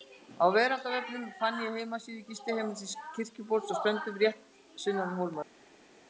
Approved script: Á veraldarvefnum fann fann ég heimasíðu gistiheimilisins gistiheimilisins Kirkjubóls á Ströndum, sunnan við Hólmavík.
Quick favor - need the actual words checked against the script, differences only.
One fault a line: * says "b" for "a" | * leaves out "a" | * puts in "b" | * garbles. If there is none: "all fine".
* leaves out "fann"
* leaves out "gistiheimilisins"
* puts in "rétt"